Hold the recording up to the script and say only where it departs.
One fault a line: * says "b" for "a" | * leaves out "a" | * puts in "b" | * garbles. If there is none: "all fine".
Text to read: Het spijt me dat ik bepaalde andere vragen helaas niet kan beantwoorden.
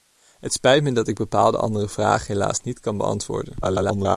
* garbles